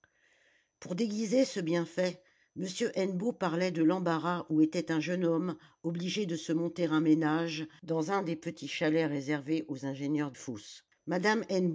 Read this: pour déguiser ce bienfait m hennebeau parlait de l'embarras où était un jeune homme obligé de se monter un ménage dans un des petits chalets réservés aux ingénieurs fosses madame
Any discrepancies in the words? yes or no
no